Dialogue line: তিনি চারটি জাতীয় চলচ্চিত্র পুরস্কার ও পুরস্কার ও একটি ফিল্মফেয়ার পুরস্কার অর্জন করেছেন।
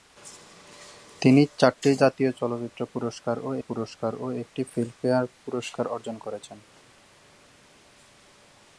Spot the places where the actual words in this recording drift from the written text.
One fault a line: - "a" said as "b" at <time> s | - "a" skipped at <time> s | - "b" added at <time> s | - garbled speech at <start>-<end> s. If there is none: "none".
none